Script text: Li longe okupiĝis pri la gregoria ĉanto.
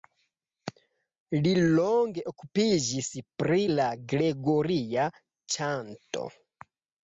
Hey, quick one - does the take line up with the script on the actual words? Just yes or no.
yes